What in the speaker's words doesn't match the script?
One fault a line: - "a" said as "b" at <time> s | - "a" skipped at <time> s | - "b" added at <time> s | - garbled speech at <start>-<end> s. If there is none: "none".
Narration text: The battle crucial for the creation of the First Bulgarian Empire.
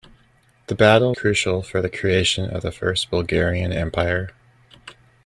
none